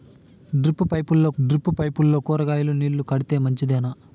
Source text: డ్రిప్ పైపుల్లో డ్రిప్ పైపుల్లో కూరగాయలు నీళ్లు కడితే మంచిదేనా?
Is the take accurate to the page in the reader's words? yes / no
yes